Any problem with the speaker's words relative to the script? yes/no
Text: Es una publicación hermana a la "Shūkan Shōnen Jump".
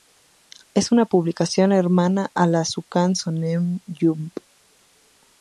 no